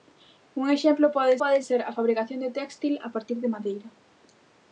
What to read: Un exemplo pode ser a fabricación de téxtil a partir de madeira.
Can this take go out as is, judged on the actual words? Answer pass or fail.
fail